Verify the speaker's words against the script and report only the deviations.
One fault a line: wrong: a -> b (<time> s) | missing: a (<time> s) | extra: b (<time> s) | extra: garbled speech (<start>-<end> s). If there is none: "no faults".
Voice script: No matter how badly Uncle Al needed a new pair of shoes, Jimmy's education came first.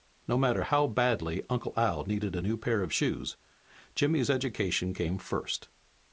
no faults